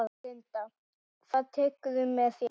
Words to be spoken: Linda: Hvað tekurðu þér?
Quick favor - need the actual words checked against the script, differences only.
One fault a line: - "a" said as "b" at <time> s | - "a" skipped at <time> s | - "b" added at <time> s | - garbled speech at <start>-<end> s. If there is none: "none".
- "með" added at 2.2 s